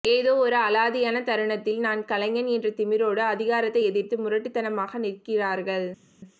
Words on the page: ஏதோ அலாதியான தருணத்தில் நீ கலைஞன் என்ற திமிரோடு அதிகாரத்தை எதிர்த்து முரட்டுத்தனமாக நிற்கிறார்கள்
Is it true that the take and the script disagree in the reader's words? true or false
true